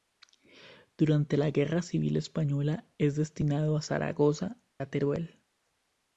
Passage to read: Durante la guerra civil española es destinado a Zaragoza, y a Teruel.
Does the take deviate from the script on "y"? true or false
true